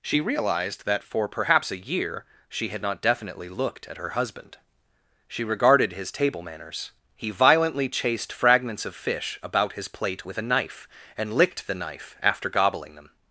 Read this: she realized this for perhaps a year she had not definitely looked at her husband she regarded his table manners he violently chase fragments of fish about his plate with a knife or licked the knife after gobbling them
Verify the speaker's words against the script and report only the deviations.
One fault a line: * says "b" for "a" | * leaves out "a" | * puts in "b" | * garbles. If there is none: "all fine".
* says "that" for "this"
* says "chased" for "chase"
* says "and" for "or"